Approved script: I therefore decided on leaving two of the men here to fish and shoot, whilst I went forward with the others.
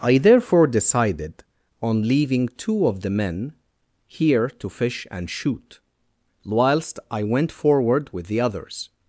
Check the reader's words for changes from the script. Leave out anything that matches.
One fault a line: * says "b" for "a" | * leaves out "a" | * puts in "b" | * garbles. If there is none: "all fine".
all fine